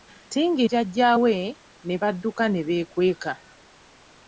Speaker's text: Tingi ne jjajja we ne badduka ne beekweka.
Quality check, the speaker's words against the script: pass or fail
fail